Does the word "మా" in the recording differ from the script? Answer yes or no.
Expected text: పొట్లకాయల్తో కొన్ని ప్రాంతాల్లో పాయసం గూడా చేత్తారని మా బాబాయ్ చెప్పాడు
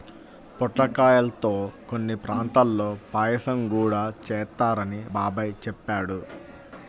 yes